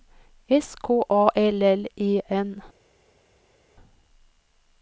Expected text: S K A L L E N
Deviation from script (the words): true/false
false